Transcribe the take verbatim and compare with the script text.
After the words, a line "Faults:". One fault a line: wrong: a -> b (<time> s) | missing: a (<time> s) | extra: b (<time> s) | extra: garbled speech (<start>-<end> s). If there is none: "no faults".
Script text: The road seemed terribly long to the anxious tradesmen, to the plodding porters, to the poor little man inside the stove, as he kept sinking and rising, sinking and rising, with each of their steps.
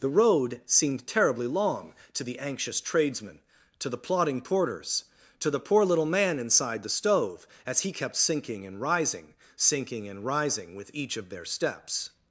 The road seemed terribly long to the anxious tradesmen, to the plodding porters, to the poor little man inside the stove, as he kept sinking and rising, sinking and rising, with each of their steps.
Faults:
no faults